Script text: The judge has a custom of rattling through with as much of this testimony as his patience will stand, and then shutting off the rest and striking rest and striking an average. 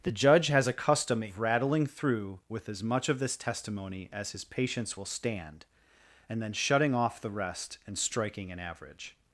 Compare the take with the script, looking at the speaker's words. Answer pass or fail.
fail